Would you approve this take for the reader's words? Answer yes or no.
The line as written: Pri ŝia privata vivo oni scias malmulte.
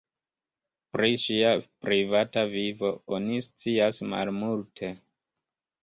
yes